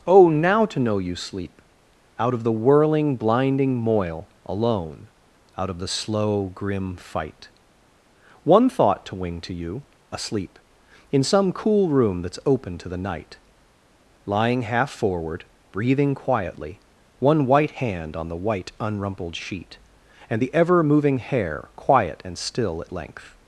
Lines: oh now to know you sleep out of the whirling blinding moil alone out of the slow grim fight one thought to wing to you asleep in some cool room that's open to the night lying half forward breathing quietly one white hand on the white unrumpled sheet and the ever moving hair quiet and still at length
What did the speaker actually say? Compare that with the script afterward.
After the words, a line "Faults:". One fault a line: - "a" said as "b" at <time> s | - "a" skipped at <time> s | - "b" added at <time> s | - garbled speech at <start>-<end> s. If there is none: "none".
oh now to know you sleep out of the whirling blinding moil alone out of the slow grim fight one thought to wing to you asleep in some cool room that's open to the night lying half forward breathing quietly one white hand on the white unrumpled sheet and the ever moving hair quiet and still at length
Faults:
none